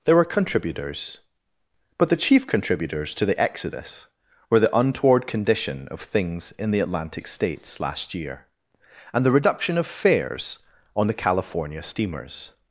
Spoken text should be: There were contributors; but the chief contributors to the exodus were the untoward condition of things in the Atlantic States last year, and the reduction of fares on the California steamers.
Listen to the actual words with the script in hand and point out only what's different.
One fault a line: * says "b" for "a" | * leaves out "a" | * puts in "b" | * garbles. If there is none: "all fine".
all fine